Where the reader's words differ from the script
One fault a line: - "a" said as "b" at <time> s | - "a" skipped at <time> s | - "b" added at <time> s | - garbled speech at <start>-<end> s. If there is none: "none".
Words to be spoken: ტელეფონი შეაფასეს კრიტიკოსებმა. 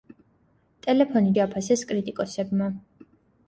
none